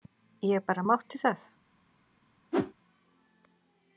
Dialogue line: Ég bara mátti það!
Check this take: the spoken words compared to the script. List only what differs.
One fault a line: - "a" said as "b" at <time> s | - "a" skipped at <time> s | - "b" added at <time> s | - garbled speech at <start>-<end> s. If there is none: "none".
none